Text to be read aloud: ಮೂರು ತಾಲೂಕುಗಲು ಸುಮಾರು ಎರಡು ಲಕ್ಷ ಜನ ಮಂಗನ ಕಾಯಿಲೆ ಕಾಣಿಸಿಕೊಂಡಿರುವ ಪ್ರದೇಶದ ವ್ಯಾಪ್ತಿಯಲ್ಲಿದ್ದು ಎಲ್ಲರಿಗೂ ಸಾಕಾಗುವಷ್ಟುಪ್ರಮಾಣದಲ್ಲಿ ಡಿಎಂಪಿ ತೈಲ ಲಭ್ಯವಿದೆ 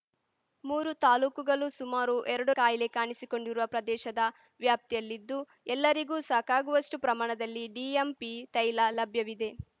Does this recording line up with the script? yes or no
no